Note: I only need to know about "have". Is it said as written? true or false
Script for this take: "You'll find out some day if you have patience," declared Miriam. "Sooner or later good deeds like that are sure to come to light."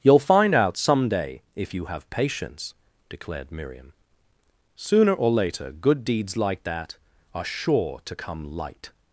true